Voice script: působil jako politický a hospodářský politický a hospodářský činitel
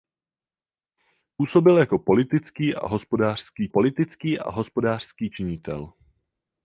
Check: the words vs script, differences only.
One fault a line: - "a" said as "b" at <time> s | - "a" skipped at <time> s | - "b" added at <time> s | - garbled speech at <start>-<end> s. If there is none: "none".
none